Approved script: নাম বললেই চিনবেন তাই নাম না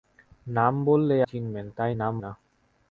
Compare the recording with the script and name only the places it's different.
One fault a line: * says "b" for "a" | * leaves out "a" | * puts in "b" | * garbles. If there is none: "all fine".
all fine